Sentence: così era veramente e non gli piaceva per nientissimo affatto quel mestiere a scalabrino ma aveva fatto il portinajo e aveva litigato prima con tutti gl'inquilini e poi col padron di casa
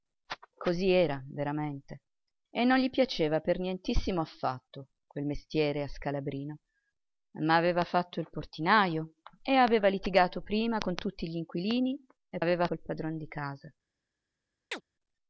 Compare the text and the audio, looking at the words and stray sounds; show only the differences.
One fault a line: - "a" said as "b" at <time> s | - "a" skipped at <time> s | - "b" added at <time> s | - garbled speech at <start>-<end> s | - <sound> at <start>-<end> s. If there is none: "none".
- "poi" said as "aveva" at 12.4 s
- chirp at 14.7-14.8 s